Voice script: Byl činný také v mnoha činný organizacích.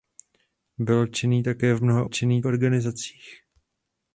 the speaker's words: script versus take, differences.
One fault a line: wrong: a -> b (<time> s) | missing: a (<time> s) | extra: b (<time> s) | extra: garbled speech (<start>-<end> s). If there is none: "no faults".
no faults